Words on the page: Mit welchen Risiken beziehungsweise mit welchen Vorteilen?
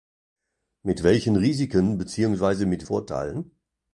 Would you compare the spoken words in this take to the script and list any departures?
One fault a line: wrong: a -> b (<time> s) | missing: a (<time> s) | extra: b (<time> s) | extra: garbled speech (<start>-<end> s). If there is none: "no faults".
missing: welchen (2.9 s)